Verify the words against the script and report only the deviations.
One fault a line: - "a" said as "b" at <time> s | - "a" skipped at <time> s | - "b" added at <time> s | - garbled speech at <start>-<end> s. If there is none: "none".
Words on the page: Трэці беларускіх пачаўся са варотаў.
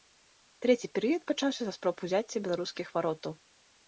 - "беларускіх" said as "перыяд" at 0.9 s
- "спроб узяцця беларускіх" added at 1.8 s